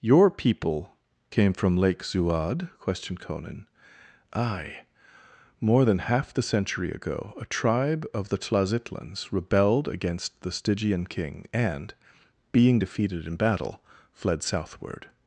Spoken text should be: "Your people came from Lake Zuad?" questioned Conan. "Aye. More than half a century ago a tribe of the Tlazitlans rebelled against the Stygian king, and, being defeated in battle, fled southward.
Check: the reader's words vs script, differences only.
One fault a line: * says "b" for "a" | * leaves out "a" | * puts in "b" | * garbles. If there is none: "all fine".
* says "the" for "a"